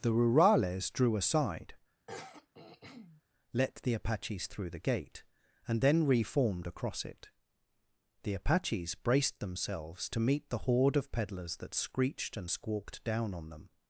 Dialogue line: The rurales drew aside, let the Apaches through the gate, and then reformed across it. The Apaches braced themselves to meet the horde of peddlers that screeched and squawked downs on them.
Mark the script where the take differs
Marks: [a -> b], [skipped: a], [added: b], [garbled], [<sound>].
The rurales drew aside, [throat clearing] let the Apaches through the gate, and then reformed across it. The Apaches braced themselves to meet the horde of peddlers that screeched and squawked [downs -> down] on them.